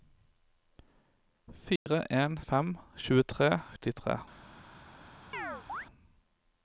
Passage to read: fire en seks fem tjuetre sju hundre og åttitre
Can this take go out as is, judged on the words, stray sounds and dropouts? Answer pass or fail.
fail